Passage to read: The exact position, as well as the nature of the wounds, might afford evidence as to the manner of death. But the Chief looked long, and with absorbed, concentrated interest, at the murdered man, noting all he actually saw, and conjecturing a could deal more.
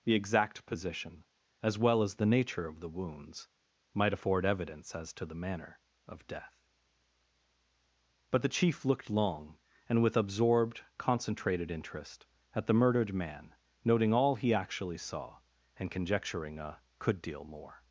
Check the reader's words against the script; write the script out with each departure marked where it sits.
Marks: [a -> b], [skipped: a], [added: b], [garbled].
The exact position, as well as the nature of the wounds, might afford evidence as to the manner of death. But the Chief looked long, and with absorbed, concentrated interest, at the murdered man, noting all he actually saw, and conjecturing a could deal more.